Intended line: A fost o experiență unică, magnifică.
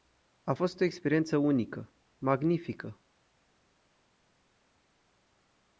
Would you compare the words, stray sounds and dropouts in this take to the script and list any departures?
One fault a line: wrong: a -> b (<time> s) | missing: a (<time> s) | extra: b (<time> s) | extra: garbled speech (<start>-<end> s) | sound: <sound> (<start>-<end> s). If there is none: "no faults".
no faults